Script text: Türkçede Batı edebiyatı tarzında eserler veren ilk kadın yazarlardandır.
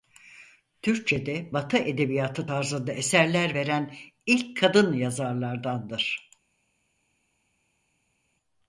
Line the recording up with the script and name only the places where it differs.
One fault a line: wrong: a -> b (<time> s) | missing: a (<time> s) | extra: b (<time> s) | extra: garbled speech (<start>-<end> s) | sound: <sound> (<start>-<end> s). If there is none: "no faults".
no faults